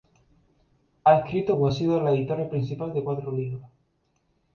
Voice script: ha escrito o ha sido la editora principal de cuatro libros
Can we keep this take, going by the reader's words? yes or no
yes